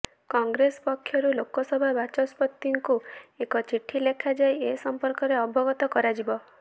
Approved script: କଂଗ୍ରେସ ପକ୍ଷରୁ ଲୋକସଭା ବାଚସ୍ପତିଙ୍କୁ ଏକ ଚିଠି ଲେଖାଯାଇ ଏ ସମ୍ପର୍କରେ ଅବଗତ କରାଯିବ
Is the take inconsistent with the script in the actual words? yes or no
no